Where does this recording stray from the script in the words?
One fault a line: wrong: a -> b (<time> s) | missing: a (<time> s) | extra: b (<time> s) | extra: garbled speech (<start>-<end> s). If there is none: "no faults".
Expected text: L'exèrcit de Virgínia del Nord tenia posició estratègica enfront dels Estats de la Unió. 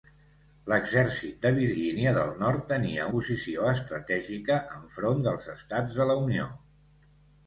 no faults